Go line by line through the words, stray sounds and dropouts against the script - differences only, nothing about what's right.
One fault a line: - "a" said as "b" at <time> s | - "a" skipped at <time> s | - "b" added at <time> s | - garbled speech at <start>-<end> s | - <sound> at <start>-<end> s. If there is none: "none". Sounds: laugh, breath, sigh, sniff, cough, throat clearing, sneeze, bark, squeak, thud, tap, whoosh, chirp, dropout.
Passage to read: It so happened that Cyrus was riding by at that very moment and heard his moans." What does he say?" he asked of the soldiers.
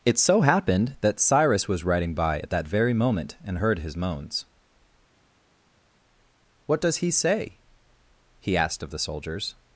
none